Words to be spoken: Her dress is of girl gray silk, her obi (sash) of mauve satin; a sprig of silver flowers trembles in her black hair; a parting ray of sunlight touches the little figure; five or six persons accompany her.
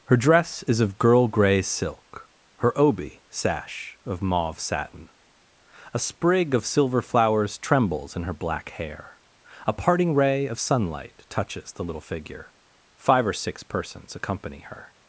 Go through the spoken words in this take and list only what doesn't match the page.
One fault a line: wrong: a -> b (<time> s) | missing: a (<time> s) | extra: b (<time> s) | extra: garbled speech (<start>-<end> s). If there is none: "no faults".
no faults